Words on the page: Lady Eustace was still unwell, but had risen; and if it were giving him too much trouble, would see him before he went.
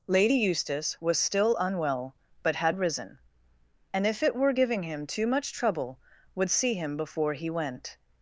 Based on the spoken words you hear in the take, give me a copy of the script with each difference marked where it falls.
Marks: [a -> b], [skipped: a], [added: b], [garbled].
Lady Eustace was still unwell, but had risen; and if it were giving him too much trouble, would see him before he went.